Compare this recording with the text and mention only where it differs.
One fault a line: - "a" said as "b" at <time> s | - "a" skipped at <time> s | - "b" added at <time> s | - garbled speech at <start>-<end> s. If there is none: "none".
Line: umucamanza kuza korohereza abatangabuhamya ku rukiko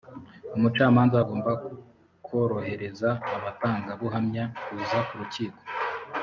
- "kuza" said as "agomba" at 1.2 s
- "kuza" added at 4.6 s